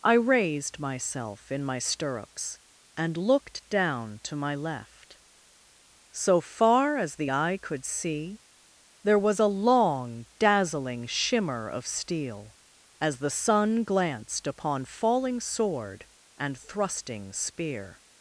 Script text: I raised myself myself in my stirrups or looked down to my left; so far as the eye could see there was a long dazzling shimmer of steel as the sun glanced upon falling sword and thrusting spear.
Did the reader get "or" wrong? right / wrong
wrong